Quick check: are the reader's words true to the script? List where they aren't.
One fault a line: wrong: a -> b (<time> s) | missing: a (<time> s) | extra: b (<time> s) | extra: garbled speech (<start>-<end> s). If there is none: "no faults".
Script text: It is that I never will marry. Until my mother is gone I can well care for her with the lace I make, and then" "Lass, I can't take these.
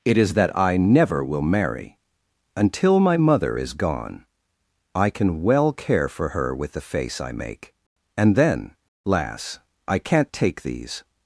wrong: lace -> face (6.8 s)